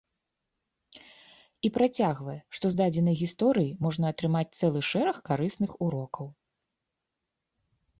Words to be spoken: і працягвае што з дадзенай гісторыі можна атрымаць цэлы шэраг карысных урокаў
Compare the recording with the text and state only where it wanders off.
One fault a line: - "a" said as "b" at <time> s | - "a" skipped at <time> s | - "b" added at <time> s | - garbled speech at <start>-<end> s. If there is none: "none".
none